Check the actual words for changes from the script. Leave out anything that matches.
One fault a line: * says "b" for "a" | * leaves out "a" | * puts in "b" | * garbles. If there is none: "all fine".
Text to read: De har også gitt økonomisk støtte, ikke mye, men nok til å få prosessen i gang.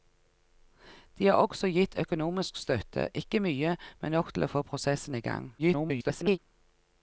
* garbles